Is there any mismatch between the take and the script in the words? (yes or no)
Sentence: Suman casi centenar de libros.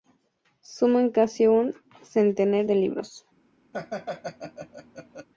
yes